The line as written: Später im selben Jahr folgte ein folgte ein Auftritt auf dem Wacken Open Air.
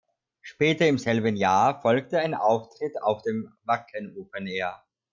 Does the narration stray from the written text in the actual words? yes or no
yes